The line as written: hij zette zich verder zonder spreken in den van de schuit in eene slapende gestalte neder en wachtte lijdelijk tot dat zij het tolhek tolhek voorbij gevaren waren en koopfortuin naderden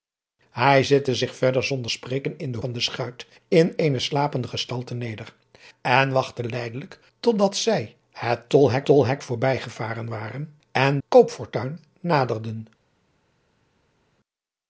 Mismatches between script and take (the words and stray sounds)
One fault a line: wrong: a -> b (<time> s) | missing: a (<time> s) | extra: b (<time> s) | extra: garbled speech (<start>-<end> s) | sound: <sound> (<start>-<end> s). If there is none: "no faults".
no faults